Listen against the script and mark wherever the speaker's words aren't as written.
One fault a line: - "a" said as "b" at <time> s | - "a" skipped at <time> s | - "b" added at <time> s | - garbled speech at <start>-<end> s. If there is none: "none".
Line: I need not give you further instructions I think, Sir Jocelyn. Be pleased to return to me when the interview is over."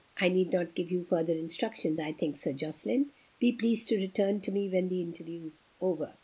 none